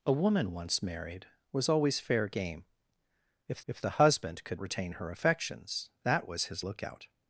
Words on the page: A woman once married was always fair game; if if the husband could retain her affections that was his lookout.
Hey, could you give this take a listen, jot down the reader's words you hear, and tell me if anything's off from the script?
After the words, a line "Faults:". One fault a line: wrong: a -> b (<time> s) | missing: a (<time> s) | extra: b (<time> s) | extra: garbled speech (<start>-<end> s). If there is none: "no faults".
A woman once married was always fair game; if if the husband could retain her affections that was his lookout.
Faults:
no faults